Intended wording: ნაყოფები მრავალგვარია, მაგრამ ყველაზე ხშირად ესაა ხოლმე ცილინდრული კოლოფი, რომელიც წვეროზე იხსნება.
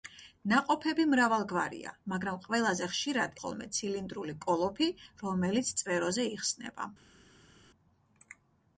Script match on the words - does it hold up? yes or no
no